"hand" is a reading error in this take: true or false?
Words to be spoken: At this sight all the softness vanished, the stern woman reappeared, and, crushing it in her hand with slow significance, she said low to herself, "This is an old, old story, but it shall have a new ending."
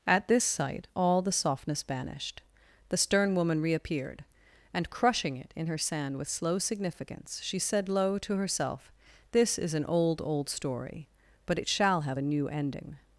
true